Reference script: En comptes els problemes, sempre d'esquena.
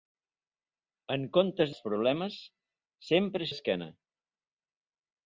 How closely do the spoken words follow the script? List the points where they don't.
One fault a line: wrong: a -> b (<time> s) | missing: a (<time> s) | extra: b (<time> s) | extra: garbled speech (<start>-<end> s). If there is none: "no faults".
no faults